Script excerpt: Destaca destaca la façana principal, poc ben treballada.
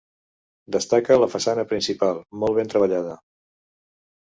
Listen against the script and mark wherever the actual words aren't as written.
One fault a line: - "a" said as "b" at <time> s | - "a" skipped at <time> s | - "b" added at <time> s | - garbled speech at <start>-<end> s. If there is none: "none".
- "destaca" skipped at 1.2 s
- "poc" said as "molt" at 2.5 s